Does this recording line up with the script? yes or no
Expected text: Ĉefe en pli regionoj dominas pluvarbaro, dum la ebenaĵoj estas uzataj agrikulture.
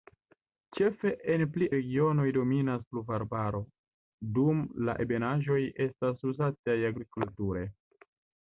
yes